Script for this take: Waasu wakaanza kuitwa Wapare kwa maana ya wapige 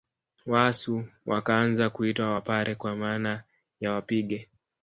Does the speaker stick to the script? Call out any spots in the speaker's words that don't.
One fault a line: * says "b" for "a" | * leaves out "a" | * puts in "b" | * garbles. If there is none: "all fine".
all fine